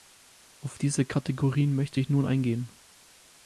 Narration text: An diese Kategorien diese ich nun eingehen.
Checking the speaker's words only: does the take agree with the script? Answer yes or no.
no